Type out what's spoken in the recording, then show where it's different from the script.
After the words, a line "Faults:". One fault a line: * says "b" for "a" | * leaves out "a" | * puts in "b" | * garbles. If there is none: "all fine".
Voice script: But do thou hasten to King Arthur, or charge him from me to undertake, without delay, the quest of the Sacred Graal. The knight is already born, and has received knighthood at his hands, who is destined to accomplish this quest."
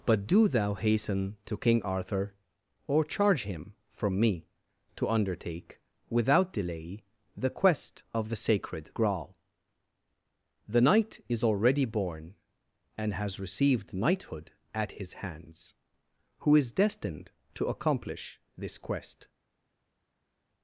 But do thou hasten to King Arthur, or charge him from me to undertake, without delay, the quest of the Sacred Graal. The knight is already born, and has received knighthood at his hands, who is destined to accomplish this quest."
Faults:
all fine